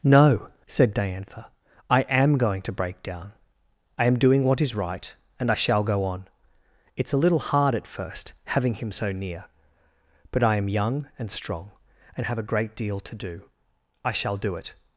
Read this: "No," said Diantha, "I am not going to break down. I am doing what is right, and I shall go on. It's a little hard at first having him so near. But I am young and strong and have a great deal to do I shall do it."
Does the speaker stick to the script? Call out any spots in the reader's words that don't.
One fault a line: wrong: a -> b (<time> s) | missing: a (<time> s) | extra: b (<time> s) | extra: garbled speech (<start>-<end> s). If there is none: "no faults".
missing: not (2.4 s)